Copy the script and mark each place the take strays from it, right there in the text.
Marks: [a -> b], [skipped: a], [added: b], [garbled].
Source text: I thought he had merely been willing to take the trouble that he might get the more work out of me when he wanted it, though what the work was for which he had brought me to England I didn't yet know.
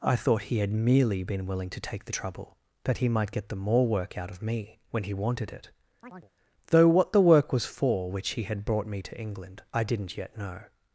I thought he had merely been willing to take the trouble that he might get the more work out of me when he wanted it, though what the work was for which he had brought me to England I didn't yet know.